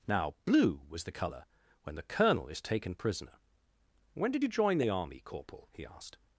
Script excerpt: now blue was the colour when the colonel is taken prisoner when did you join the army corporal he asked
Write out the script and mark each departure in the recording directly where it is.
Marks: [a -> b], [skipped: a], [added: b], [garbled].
now blue was the colour when the colonel is taken prisoner when did you join the army corporal he asked